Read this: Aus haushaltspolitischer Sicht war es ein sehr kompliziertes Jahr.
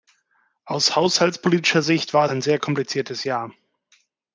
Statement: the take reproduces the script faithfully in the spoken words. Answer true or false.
false